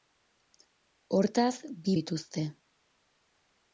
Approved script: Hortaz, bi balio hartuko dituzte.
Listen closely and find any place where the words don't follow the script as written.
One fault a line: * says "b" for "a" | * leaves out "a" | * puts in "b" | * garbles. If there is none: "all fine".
* leaves out "balio hartuko"